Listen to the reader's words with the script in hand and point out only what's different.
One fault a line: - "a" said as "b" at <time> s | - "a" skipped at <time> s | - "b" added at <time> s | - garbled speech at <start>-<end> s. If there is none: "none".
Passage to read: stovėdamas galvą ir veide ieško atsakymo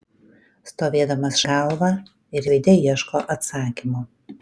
none